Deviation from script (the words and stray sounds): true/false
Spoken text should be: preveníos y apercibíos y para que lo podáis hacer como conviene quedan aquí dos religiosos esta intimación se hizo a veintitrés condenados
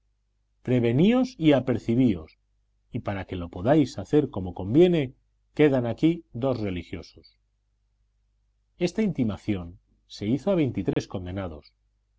true